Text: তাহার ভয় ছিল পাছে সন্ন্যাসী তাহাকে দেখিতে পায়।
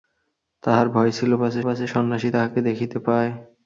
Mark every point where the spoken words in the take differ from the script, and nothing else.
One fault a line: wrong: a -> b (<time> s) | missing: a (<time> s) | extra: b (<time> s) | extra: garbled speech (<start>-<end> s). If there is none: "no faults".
extra: পাছে (1.6 s)